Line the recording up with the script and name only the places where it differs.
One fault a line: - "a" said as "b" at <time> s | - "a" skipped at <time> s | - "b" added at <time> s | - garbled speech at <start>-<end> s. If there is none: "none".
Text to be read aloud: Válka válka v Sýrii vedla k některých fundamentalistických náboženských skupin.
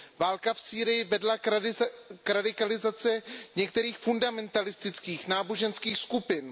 - "válka" skipped at 0.5 s
- "radikalizaci" added at 2.3 s